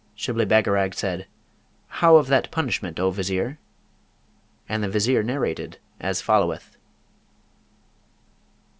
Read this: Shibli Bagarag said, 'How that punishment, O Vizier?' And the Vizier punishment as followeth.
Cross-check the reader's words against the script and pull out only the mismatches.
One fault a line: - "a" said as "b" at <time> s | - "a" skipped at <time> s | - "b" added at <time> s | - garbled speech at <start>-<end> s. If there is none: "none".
- "of" added at 2.1 s
- "punishment" said as "narrated" at 5.2 s